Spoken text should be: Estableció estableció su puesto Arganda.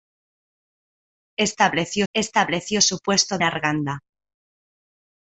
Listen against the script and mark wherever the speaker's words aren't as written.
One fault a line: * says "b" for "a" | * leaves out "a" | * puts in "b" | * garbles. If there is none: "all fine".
all fine